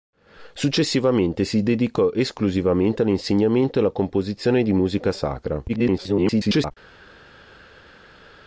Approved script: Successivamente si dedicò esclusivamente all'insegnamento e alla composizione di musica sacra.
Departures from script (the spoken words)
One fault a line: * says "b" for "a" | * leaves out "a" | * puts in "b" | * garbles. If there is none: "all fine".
* garbles